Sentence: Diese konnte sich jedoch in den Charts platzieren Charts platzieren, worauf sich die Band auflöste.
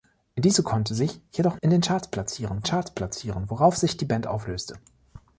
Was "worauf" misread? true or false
false